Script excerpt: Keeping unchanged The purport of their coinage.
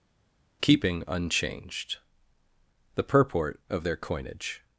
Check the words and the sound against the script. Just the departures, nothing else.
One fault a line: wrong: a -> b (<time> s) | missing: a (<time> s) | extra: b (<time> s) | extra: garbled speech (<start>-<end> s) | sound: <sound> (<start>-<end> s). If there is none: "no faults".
no faults